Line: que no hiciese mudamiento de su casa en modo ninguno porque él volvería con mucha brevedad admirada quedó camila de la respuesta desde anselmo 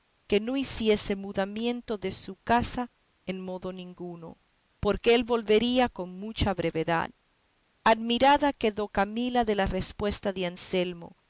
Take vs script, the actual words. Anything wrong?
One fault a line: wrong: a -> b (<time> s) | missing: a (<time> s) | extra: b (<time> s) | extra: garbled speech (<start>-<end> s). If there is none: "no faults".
wrong: desde -> de (10.3 s)